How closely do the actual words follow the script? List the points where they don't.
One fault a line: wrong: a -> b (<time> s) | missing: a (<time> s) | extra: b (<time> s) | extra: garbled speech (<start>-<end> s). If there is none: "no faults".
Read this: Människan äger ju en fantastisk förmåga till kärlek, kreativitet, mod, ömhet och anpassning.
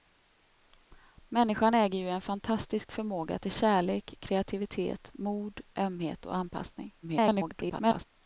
extra: garbled speech (7.0-8.1 s)